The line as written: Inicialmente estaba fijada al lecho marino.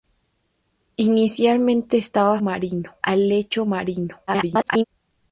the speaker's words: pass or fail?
fail